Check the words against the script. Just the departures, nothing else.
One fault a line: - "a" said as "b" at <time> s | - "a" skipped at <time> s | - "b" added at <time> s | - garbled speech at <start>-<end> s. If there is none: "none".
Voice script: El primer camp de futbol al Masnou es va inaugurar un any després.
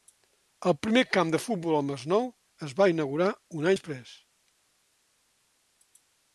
- "any" skipped at 3.7 s